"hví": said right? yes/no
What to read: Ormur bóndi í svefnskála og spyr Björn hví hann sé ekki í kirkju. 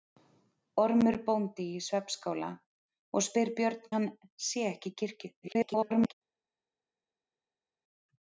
no